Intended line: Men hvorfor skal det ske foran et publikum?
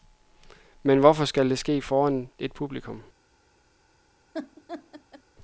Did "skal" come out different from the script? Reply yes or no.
no